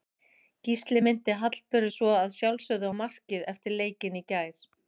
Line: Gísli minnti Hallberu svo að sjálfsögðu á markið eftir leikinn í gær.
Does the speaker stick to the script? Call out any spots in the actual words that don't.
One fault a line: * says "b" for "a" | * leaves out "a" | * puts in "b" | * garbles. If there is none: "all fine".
all fine